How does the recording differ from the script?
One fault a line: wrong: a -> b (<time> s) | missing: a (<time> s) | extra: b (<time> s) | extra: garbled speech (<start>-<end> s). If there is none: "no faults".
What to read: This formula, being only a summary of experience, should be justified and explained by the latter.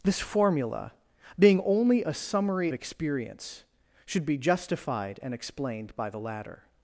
missing: of (2.7 s)